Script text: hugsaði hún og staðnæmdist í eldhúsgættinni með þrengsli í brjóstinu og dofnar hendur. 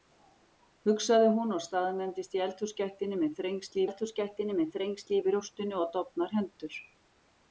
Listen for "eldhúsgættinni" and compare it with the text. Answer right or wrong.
right